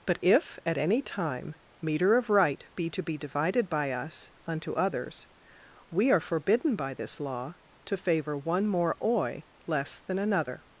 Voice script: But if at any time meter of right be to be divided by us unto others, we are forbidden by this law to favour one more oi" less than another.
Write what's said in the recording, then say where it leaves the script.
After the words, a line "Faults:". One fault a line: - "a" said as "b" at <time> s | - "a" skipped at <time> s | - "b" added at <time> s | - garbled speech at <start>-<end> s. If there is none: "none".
But if at any time meter of right be to be divided by us unto others, we are forbidden by this law to favour one more oi" less than another.
Faults:
none